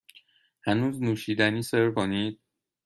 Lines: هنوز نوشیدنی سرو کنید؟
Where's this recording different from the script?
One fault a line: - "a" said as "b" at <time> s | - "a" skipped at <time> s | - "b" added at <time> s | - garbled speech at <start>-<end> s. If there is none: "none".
none